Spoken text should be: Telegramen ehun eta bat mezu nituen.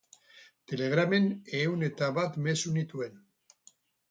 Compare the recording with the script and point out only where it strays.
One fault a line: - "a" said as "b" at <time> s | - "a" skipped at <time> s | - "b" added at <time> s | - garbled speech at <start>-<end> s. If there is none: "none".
none